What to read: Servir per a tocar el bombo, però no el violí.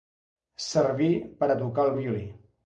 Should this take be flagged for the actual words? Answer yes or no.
yes